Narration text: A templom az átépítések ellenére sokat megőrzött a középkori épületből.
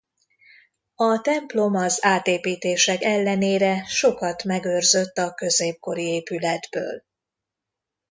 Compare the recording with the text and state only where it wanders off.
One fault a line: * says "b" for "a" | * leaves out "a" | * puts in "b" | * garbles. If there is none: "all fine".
all fine